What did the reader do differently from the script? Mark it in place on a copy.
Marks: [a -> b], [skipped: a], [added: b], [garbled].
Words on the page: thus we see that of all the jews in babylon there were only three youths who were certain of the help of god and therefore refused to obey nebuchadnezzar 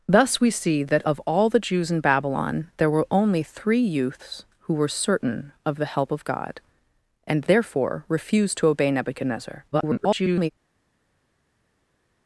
thus we see that of all the jews in babylon there were only three youths who were certain of the help of god and therefore refused to obey nebuchadnezzar [garbled]